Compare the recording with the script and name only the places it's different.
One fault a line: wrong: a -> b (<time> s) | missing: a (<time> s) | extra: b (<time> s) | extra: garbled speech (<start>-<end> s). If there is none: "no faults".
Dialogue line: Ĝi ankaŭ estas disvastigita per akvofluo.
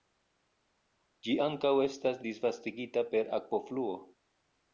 no faults